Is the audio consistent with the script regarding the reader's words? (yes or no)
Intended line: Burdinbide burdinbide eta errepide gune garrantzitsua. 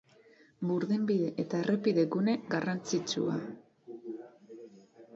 no